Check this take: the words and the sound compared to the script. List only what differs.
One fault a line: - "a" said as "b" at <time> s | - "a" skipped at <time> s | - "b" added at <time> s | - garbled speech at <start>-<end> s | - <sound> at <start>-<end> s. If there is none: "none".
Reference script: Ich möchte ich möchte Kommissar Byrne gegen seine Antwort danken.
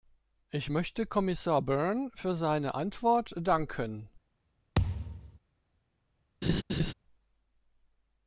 - "ich möchte" skipped at 1.1 s
- "gegen" said as "für" at 2.2 s
- thud at 4.7-5.4 s
- laugh at 6.4-6.9 s